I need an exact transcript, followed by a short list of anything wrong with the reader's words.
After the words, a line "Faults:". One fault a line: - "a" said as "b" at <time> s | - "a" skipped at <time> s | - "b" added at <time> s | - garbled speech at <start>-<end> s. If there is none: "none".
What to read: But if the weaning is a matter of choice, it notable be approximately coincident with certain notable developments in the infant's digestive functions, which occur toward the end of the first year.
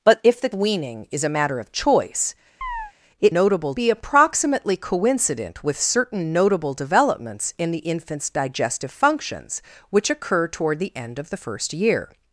But if the weaning is a matter of choice, it notable be approximately coincident with certain notable developments in the infant's digestive functions, which occur toward the end of the first year.
Faults:
none